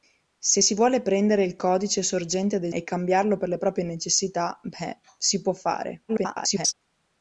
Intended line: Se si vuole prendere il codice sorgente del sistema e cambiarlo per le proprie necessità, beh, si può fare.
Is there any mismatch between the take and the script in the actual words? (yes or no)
yes